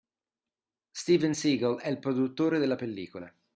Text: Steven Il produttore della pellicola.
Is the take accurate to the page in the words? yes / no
no